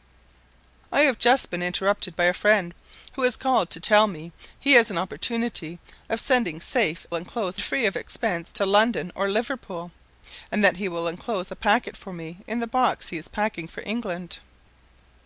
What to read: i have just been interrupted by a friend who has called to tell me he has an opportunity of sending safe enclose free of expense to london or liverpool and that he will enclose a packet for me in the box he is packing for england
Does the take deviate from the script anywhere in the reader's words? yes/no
no